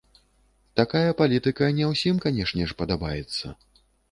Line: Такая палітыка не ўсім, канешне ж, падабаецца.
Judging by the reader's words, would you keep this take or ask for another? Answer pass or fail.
pass